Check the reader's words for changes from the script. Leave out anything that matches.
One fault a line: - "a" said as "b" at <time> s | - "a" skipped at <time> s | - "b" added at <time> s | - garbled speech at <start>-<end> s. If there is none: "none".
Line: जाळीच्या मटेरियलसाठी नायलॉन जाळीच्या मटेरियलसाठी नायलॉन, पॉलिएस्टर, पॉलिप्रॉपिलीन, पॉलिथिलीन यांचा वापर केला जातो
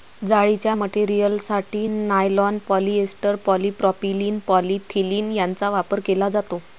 - "जाळीच्या मटेरियलसाठी नायलॉन" skipped at 2.6 s